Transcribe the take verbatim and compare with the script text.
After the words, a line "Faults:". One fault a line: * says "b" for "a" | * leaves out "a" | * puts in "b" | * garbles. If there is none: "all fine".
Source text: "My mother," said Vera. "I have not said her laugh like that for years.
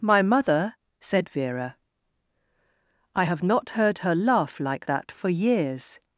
"My mother," said Vera. "I have not heard her laugh like that for years.
Faults:
* says "heard" for "said"